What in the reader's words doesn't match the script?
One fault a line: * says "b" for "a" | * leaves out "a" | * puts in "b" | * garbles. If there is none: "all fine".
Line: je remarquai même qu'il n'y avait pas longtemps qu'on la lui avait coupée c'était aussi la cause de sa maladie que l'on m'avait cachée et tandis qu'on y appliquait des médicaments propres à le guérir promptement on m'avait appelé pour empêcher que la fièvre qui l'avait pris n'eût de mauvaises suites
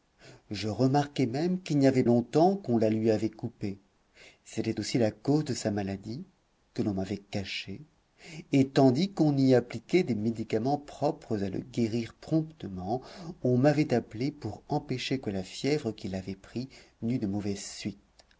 * leaves out "pas"